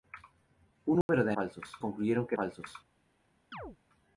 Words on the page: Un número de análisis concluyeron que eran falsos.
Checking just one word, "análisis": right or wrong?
wrong